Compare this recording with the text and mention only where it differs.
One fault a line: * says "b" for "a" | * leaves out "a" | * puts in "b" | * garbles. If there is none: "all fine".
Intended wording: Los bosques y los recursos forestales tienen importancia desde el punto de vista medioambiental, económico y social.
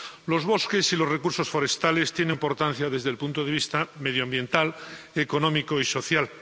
all fine